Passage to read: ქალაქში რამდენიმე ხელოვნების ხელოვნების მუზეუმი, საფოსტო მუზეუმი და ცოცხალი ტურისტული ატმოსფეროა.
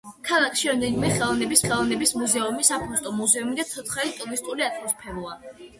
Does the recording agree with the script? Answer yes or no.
yes